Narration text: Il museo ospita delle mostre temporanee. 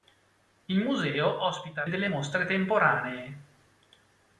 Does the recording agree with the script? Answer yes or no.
yes